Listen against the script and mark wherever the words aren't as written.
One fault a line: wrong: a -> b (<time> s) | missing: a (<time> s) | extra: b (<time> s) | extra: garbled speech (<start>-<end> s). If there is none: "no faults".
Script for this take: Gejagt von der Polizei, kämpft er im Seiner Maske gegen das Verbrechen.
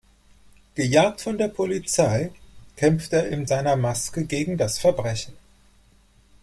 no faults